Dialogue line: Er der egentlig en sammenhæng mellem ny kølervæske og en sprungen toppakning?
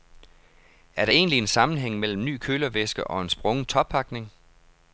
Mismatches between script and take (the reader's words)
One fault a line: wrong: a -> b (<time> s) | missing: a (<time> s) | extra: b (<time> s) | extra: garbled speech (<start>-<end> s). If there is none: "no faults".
no faults